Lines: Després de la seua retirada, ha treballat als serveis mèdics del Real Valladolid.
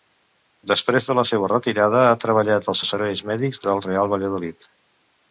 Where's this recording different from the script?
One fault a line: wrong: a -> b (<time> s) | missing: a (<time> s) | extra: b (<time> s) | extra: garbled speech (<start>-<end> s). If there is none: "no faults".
extra: als (2.8 s)